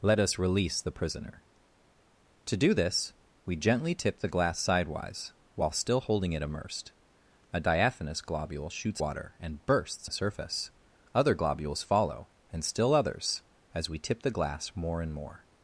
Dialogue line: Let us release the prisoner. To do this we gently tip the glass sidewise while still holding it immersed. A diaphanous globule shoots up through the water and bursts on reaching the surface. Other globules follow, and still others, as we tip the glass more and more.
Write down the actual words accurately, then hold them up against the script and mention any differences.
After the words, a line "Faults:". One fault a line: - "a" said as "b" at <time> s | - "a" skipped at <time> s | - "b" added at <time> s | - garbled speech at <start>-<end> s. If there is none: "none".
Let us release the prisoner. To do this we gently tip the glass sidewise while still holding it immersed. A diaphanous globule shoots water and bursts the surface. Other globules follow, and still others, as we tip the glass more and more.
Faults:
- "up through the" skipped at 9.0 s
- "on reaching" skipped at 10.1 s